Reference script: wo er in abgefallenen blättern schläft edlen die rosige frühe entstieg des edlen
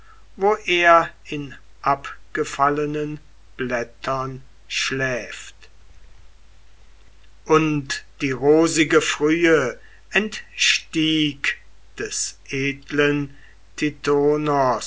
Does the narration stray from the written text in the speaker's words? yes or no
yes